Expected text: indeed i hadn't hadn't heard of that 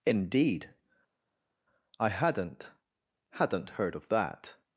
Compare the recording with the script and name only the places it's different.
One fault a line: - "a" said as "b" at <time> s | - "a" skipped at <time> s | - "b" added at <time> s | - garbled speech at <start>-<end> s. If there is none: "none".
none